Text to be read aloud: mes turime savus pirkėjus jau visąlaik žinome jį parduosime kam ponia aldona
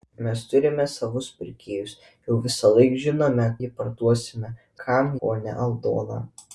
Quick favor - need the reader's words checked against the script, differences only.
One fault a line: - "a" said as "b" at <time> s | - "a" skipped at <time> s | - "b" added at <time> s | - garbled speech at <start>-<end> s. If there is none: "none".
none